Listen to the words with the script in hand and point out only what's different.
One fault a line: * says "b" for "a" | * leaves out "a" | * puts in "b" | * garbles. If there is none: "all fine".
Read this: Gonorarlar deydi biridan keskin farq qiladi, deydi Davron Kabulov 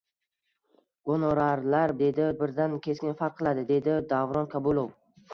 all fine